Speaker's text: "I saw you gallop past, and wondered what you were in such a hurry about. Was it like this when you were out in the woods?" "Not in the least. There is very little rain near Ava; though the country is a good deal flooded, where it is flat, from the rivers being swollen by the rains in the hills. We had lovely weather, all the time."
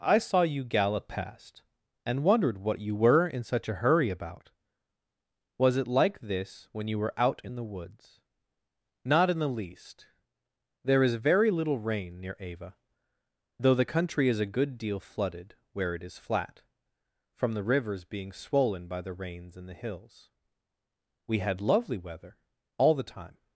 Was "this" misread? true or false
false